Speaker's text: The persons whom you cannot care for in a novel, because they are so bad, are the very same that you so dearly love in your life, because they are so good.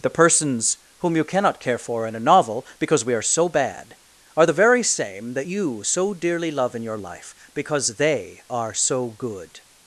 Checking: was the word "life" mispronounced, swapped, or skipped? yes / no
no